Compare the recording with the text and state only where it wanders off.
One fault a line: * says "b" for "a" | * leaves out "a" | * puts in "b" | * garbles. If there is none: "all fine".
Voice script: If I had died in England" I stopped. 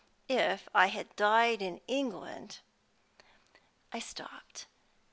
all fine